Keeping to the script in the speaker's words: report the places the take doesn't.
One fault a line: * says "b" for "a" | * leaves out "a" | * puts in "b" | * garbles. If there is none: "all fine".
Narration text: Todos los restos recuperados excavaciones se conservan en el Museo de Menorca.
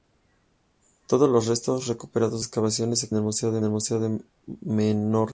all fine